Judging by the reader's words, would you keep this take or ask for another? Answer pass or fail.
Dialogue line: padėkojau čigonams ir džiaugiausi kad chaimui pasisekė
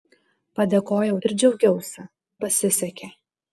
fail